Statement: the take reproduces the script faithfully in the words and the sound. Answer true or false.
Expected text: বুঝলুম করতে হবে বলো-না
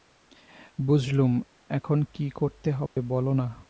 false